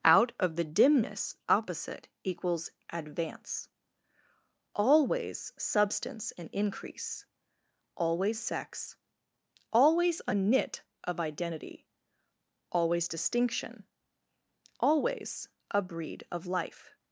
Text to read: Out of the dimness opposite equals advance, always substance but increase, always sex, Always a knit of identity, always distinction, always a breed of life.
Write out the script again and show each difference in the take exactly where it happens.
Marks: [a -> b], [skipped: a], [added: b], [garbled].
Out of the dimness opposite equals advance, always substance [but -> and] increase, always sex, Always a knit of identity, always distinction, always a breed of life.